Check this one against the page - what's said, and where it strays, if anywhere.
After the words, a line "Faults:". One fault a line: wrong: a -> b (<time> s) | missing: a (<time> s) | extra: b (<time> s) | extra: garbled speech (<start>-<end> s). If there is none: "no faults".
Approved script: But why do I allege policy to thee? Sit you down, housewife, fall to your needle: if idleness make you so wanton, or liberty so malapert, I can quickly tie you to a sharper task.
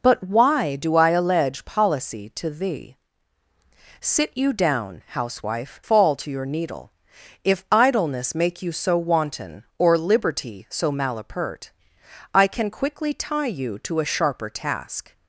But why do I allege policy to thee? Sit you down, housewife, fall to your needle: if idleness make you so wanton, or liberty so malapert, I can quickly tie you to a sharper task.
Faults:
no faults